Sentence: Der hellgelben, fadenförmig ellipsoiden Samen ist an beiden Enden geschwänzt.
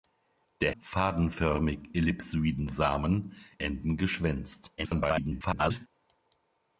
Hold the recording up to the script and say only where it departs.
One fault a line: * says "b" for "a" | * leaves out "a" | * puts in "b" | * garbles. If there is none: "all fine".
* leaves out "hellgelben"
* leaves out "ist an beiden"
* garbles